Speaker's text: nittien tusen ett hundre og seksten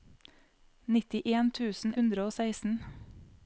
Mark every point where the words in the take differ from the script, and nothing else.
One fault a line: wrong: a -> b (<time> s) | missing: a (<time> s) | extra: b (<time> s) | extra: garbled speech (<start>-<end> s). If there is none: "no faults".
missing: ett (1.9 s)